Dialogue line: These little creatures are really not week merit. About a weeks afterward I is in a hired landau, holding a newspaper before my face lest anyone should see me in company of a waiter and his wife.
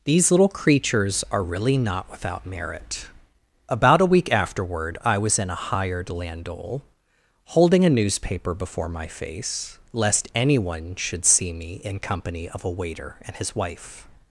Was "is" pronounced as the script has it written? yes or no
no